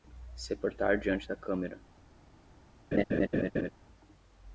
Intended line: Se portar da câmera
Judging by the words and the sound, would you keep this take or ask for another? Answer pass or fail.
fail